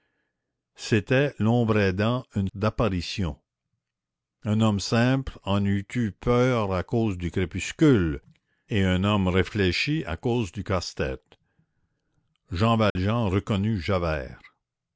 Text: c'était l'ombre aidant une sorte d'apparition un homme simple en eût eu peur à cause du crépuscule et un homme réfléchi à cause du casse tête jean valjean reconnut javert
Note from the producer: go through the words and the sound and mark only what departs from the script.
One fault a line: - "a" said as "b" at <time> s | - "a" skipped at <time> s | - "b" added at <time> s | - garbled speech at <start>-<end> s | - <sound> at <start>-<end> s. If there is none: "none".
- "sorte" skipped at 2.5 s
- dropout at 12.9-13.0 s